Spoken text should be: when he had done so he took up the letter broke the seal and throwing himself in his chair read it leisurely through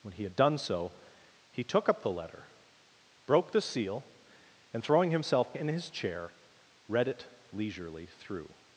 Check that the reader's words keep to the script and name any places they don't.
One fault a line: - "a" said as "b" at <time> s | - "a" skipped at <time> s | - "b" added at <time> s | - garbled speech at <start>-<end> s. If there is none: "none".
none